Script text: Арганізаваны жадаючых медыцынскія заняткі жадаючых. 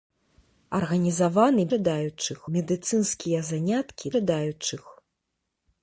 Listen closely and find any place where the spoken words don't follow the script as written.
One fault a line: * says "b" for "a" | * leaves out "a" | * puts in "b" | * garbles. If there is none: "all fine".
all fine